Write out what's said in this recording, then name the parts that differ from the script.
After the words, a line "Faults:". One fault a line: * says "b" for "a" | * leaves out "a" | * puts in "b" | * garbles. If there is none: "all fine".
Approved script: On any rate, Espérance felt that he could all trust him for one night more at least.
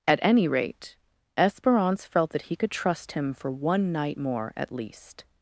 At any rate, Espérance felt that he could trust him for one night more at least.
Faults:
* says "At" for "On"
* leaves out "all"